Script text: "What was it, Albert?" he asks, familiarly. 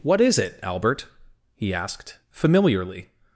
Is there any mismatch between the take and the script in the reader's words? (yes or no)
yes